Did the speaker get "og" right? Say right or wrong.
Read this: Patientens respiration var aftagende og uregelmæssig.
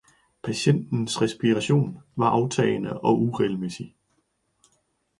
right